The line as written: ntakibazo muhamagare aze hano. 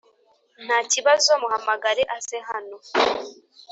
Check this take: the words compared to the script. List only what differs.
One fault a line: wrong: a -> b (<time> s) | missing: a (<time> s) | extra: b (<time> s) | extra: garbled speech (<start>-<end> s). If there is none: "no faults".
no faults